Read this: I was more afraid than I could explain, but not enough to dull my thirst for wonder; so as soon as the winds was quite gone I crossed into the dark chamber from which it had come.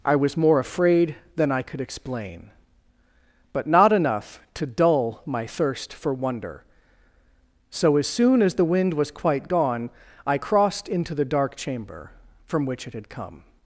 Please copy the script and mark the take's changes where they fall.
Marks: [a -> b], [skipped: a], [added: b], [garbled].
I was more afraid than I could explain, but not enough to dull my thirst for wonder; so as soon as the [winds -> wind] was quite gone I crossed into the dark chamber from which it had come.